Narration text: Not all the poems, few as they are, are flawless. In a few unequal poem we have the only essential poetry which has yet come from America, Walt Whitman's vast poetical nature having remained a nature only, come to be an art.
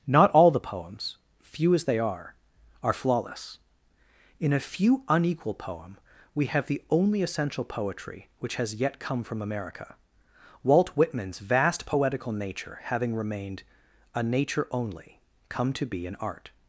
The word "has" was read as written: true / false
true